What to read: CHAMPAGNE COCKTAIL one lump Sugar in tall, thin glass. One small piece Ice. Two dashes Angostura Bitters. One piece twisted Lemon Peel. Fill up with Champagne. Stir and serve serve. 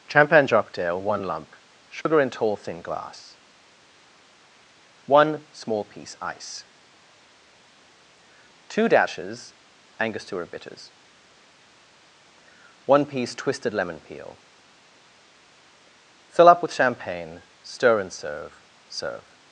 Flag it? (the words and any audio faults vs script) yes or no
yes